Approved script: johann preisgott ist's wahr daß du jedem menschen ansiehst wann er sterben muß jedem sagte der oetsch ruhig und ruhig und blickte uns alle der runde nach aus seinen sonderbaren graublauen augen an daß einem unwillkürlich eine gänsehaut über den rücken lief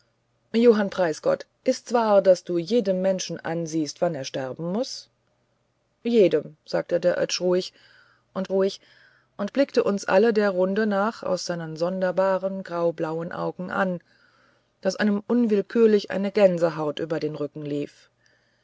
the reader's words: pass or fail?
pass